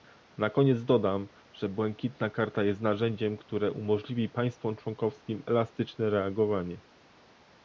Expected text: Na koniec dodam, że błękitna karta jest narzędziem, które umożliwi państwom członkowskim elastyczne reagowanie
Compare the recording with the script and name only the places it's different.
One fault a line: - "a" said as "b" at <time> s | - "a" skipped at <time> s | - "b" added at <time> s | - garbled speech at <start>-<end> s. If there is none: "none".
none